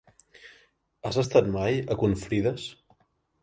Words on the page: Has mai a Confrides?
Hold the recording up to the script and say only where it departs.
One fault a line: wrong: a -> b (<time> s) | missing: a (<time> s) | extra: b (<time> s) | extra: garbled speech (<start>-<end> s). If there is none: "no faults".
extra: estat (1.2 s)